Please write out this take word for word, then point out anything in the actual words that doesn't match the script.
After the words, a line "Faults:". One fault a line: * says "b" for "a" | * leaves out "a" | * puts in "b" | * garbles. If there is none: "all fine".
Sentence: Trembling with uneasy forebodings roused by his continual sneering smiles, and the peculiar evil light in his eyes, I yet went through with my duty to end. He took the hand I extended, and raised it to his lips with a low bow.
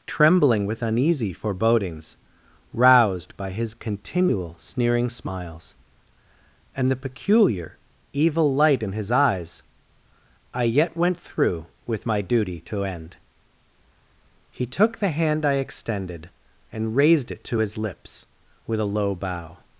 Trembling with uneasy forebodings roused by his continual sneering smiles, and the peculiar evil light in his eyes, I yet went through with my duty to end. He took the hand I extended, and raised it to his lips with a low bow.
Faults:
all fine